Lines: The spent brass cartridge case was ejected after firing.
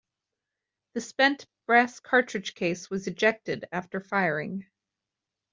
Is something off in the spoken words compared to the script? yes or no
no